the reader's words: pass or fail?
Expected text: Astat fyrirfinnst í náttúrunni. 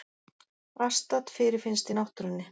pass